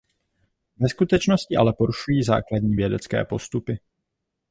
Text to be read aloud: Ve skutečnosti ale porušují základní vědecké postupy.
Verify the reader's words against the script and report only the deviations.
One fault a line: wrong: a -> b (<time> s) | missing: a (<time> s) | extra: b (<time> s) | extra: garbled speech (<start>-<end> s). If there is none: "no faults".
no faults